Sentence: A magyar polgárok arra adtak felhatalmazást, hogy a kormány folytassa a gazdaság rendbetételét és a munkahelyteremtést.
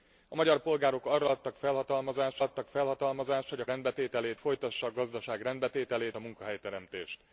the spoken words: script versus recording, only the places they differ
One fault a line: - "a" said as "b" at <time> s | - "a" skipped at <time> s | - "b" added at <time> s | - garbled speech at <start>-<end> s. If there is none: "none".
- "adtak felhatalmazást" added at 2.4 s
- "kormány" said as "rendbetételét" at 3.7 s
- "és" skipped at 6.2 s